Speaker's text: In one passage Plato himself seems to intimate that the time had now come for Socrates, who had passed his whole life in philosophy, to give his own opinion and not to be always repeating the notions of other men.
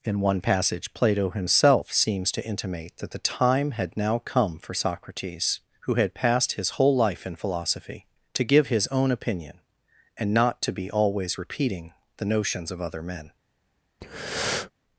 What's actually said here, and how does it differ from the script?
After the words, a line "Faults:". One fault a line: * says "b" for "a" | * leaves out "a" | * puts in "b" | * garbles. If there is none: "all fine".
In one passage Plato himself seems to intimate that the time had now come for Socrates, who had passed his whole life in philosophy, to give his own opinion and not to be always repeating the notions of other men.
Faults:
all fine